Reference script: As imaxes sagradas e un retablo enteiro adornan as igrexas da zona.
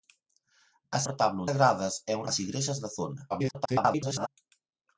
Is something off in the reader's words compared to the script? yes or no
yes